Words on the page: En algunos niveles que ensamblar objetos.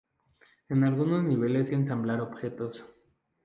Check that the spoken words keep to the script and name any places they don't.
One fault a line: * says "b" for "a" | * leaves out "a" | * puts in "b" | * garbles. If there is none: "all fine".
all fine